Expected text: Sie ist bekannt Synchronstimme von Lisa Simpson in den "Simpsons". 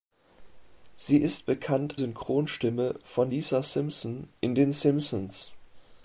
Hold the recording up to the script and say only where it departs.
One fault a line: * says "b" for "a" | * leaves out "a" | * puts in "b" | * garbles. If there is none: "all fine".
all fine